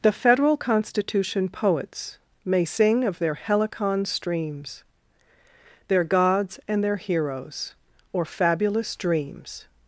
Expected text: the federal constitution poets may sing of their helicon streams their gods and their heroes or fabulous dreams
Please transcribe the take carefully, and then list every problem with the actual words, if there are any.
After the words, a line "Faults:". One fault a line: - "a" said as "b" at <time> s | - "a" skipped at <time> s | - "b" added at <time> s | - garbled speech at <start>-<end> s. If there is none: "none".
the federal constitution poets may sing of their helicon streams their gods and their heroes or fabulous dreams
Faults:
none